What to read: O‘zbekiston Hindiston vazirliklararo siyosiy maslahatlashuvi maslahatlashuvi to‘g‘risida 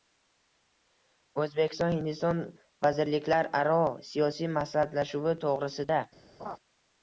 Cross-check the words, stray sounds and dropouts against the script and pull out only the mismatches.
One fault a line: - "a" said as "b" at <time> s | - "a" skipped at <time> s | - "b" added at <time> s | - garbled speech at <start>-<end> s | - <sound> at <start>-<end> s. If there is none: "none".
- "maslahatlashuvi" skipped at 5.4 s
- laugh at 6.4-6.6 s